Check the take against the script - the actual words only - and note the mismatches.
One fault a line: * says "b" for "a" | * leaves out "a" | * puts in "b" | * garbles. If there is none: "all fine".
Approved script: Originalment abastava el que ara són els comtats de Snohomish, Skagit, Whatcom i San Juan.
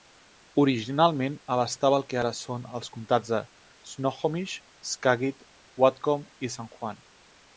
all fine